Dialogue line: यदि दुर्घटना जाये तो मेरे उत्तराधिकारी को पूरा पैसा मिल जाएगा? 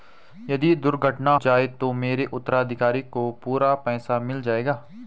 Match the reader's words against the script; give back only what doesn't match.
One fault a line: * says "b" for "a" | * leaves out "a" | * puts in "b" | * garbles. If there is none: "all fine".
all fine